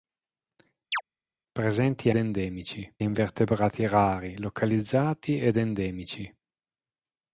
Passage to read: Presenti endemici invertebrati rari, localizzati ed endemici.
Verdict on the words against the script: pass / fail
pass